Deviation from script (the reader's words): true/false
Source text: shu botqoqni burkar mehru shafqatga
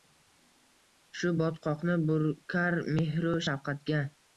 false